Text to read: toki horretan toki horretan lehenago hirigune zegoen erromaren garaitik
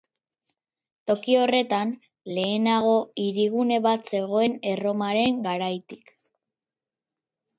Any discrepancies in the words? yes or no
yes